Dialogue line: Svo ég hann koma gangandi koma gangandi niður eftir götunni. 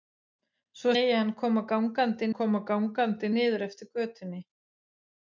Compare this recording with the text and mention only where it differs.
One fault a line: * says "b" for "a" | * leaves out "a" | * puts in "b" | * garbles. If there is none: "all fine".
all fine